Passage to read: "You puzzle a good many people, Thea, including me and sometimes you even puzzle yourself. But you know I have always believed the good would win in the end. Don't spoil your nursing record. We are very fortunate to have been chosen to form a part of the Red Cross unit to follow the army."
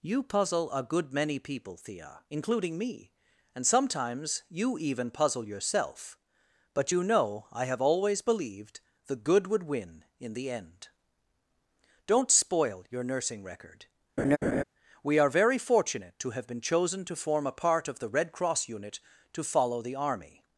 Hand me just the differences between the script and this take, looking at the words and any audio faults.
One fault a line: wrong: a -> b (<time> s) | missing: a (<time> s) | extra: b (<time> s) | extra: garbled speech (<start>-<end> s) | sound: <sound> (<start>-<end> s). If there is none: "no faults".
sound: laugh (14.2-14.6 s)